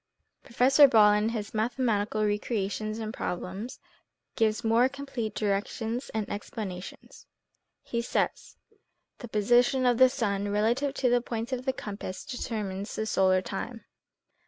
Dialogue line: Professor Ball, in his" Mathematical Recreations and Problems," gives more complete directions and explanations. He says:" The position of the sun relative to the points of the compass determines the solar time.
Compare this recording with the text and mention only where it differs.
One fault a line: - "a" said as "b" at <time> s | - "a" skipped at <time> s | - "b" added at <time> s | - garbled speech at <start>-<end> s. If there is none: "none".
none